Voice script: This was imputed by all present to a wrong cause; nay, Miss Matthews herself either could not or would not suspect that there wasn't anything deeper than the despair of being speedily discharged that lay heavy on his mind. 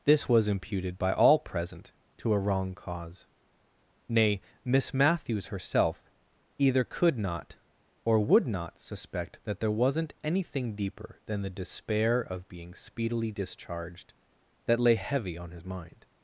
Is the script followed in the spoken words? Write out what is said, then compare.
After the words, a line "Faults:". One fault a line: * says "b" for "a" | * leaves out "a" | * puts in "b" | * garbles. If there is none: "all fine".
This was imputed by all present to a wrong cause; nay, Miss Matthews herself either could not or would not suspect that there wasn't anything deeper than the despair of being speedily discharged that lay heavy on his mind.
Faults:
all fine